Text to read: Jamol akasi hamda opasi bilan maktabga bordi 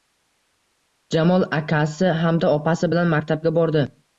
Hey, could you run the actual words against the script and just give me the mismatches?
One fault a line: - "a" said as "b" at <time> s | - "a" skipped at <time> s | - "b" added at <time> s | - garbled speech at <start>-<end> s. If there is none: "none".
none